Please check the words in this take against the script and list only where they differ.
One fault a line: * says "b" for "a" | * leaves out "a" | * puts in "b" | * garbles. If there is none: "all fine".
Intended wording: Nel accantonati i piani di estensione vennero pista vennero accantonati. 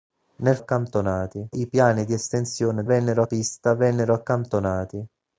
all fine